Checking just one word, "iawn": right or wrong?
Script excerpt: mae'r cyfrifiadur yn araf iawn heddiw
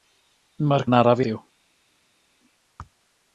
wrong